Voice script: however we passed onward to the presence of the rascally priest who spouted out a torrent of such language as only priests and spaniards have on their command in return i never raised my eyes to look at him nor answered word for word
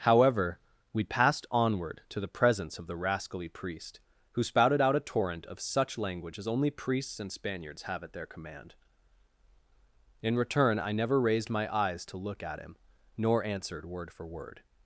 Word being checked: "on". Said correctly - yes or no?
no